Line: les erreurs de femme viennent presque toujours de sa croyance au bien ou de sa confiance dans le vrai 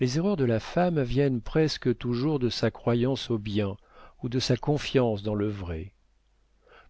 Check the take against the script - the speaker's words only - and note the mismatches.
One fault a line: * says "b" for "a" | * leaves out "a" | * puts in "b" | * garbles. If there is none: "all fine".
* puts in "la"